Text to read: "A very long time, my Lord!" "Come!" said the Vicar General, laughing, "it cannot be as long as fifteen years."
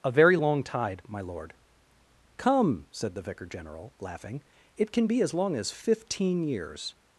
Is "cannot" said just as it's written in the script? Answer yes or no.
no